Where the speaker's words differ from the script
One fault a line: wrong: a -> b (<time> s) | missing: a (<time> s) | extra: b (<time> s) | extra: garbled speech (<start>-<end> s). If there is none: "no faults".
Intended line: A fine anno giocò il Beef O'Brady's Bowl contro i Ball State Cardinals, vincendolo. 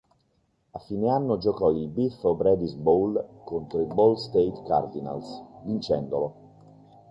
no faults